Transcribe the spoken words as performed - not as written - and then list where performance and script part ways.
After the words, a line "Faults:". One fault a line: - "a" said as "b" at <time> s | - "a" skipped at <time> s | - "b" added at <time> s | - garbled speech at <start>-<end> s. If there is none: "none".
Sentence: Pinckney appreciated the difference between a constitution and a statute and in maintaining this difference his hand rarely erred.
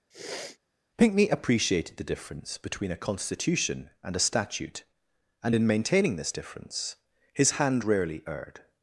Pinckney appreciated the difference between a constitution and a statute and in maintaining this difference his hand rarely erred.
Faults:
none